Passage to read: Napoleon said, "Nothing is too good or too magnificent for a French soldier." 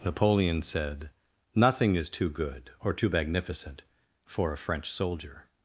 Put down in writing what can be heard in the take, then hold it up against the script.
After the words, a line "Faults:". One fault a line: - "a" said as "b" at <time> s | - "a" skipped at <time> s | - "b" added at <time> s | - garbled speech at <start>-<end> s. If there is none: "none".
Napoleon said, "Nothing is too good or too magnificent for a French soldier."
Faults:
none